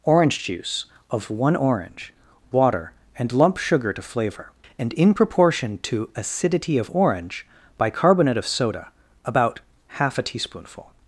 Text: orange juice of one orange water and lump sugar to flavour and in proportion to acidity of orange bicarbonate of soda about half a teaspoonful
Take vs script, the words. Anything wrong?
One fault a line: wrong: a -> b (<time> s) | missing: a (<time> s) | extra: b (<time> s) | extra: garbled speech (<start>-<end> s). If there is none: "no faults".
no faults